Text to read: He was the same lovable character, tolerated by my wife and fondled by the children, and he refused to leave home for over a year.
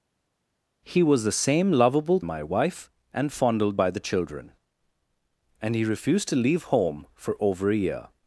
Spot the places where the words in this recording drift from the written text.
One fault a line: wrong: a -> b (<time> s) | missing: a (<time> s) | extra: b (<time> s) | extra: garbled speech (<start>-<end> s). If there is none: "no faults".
missing: character tolerated by (2.2 s)